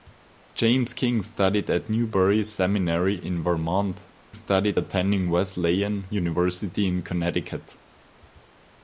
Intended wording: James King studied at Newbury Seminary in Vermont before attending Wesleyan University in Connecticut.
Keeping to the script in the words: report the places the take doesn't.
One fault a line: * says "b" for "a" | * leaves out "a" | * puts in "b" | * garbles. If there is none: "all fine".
* says "studied" for "before"